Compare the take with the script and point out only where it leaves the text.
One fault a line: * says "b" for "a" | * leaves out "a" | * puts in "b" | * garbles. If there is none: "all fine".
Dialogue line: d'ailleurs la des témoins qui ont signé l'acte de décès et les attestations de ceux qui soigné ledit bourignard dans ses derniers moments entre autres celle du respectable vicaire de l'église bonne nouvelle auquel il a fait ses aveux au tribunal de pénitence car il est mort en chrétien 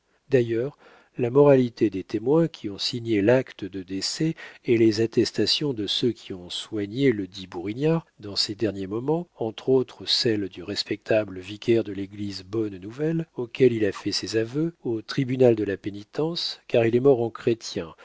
* puts in "moralité"
* puts in "ont"
* puts in "la"